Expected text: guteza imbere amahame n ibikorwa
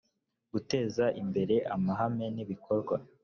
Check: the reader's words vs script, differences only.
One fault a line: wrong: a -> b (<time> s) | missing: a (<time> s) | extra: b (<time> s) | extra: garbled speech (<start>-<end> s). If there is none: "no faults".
no faults